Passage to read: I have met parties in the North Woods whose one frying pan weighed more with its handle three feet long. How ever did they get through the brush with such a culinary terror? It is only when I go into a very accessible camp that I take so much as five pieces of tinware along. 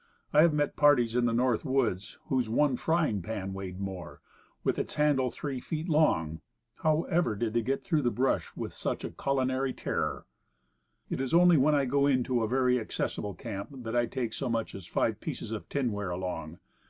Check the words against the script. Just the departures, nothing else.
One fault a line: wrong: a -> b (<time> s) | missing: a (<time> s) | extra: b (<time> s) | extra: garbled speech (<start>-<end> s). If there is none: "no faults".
no faults